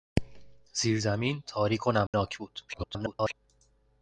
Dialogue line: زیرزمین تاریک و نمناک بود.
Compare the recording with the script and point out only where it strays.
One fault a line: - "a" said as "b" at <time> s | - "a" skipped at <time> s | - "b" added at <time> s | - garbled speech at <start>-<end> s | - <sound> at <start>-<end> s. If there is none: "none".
- dropout at 2.1-2.1 s
- garbled speech at 2.7-3.3 s